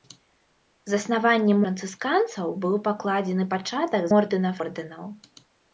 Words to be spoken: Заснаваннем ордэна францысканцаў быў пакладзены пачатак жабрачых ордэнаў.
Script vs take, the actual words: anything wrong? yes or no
yes